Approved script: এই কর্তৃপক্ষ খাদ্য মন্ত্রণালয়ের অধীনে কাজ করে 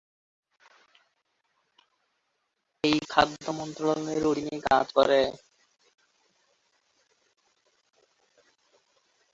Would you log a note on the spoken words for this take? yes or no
yes